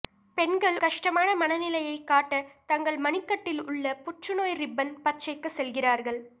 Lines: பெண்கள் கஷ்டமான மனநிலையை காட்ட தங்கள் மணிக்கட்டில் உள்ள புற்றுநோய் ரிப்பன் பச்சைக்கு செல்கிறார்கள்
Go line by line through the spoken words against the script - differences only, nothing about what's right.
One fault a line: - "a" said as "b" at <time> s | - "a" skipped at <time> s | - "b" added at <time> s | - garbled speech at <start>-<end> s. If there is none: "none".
none